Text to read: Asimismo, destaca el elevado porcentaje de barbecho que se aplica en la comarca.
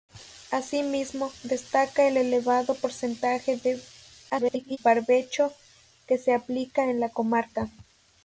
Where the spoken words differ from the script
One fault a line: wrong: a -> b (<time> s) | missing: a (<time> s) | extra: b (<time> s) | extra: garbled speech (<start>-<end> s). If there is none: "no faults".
extra: garbled speech (4.3-4.8 s)